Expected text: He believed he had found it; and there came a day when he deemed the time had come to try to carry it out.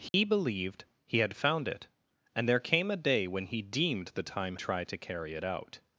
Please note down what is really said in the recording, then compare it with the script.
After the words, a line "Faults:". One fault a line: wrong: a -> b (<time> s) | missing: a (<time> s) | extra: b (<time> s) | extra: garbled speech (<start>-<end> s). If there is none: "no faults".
He believed he had found it; and there came a day when he deemed the time try to carry it out.
Faults:
missing: had come to (4.5 s)